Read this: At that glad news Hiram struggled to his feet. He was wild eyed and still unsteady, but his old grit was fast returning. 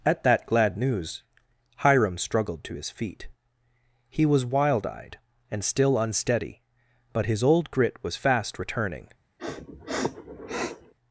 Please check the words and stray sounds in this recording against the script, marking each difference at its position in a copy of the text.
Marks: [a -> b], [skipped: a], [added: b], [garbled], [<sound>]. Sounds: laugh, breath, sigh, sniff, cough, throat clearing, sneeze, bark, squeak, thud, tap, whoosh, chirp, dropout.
At that glad news Hiram struggled to his feet. He was wild eyed and still unsteady, but his old grit was fast returning. [sniff]